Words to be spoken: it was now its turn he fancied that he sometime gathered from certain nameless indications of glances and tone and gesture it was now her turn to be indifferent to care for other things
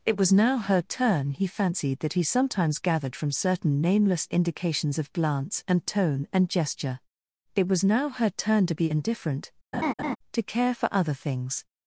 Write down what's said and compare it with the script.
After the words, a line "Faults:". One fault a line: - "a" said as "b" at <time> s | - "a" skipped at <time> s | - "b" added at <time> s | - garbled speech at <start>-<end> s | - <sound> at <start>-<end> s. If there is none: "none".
it was now her turn he fancied that he sometimes gathered from certain nameless indications of glance and tone and gesture it was now her turn to be indifferent to care for other things
Faults:
- "its" said as "her" at 0.6 s
- "sometime" said as "sometimes" at 2.2 s
- "glances" said as "glance" at 5.1 s
- laugh at 9.7-10.2 s